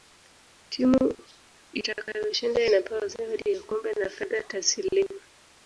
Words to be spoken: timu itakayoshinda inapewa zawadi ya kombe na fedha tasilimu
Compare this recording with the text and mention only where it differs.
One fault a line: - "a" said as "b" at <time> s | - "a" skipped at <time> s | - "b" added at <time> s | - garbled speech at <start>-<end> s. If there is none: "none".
none